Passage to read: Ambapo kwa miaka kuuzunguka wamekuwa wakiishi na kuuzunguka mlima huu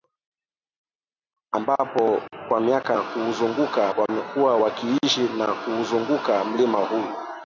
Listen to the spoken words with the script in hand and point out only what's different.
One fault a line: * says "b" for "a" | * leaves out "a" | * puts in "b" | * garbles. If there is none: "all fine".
all fine